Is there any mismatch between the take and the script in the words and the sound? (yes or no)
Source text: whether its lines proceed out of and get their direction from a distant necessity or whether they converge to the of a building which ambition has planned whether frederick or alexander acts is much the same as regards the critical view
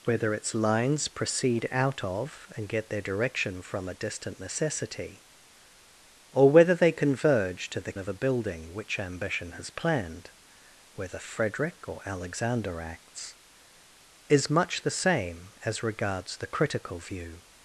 no